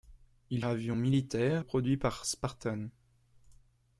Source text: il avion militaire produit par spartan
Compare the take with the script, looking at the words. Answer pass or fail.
pass